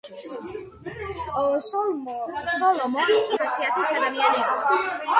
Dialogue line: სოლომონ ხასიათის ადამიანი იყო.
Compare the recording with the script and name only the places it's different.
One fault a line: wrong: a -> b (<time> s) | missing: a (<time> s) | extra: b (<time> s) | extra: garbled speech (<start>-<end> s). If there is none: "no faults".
no faults